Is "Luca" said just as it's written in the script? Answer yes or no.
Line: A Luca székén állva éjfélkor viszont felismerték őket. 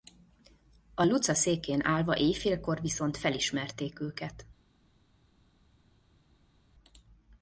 yes